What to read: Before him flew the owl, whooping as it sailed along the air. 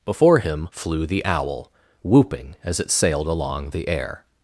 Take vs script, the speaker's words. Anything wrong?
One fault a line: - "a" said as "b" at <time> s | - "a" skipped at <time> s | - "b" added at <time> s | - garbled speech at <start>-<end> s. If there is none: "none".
none